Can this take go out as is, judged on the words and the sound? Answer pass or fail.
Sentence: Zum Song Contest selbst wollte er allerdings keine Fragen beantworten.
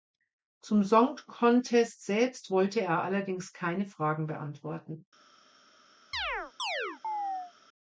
fail